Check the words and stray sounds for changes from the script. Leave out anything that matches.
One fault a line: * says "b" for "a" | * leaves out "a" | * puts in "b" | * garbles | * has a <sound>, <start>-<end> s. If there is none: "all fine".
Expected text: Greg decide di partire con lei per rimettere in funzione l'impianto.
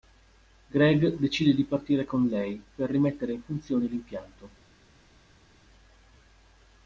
all fine